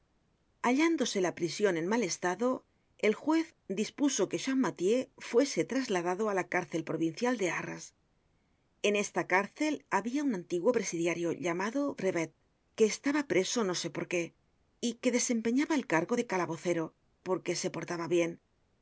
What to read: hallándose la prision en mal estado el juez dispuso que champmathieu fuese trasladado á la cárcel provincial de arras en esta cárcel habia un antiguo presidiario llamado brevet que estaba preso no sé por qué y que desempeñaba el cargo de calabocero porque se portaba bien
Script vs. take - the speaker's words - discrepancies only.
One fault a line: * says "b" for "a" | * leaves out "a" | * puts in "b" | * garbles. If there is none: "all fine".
all fine